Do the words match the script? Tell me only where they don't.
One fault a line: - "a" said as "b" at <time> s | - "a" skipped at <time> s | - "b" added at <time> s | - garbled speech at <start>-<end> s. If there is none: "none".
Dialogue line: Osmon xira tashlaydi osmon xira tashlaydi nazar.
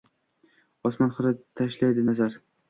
- "osmon xira tashlaydi" skipped at 2.1 s